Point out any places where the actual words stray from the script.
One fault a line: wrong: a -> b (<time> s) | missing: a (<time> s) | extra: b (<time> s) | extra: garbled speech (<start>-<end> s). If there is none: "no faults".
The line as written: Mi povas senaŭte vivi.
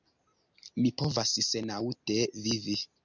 no faults